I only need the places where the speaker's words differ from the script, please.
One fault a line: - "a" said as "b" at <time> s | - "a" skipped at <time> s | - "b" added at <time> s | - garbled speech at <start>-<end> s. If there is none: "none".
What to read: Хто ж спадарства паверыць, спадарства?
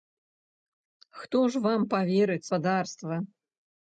- "спадарства" said as "вам" at 1.7 s